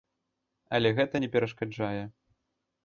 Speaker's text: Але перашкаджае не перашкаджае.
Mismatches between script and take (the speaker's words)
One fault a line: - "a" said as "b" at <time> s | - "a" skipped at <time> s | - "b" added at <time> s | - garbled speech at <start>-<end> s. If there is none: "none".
- "перашкаджае" said as "гэта" at 1.0 s